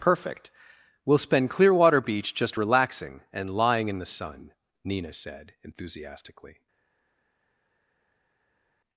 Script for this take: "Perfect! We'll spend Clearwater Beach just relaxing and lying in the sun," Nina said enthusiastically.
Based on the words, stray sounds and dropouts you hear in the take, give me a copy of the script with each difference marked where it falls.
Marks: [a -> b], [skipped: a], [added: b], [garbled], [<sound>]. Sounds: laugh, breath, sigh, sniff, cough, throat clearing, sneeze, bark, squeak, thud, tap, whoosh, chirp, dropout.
"Perfect! We'll spend Clearwater Beach just relaxing and lying in the sun," Nina said enthusiastically.